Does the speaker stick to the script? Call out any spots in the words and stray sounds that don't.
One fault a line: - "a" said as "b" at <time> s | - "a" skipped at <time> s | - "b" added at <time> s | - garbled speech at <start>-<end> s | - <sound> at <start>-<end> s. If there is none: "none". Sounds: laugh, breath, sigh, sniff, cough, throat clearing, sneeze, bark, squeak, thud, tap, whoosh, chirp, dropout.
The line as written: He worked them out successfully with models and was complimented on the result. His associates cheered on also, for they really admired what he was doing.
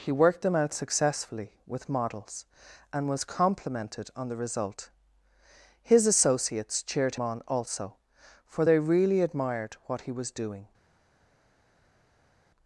none